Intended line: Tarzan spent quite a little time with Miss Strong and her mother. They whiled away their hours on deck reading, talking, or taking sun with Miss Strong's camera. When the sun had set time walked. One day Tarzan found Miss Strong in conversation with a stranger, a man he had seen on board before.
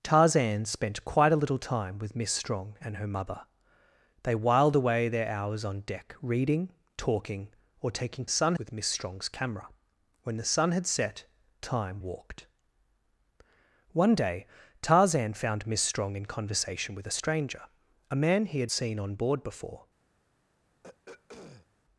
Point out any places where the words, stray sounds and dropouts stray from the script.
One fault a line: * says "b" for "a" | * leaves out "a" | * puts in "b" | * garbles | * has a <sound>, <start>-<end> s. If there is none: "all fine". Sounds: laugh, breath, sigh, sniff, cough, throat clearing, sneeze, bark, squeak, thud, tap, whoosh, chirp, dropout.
* has a throat clearing, 20.8-21.7 s